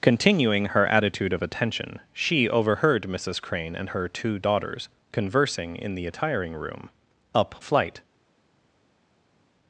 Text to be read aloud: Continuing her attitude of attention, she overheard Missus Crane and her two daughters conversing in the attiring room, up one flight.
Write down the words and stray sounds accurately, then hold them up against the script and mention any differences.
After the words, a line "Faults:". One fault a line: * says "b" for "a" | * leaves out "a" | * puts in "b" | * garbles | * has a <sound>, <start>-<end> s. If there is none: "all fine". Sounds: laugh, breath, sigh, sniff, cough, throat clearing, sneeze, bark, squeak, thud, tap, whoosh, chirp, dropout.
Continuing her attitude of attention, she overheard Missus Crane and her two daughters conversing in the attiring room, up flight.
Faults:
* leaves out "one"